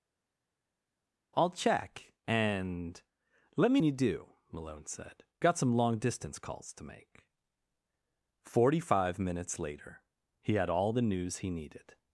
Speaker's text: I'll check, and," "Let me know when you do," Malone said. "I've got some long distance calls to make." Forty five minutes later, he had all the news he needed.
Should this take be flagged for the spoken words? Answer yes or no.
yes